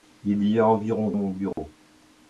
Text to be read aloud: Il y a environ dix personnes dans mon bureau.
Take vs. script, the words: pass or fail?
fail